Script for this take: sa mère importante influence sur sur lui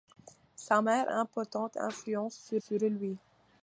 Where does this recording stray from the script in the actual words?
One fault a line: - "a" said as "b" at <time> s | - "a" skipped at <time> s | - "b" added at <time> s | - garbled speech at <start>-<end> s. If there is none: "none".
none